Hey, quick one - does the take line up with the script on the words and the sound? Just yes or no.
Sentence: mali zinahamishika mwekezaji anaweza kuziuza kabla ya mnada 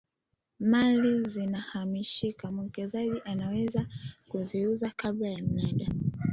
yes